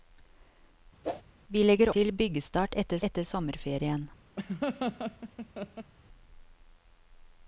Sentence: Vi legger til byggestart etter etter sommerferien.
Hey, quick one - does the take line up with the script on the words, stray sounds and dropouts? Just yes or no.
no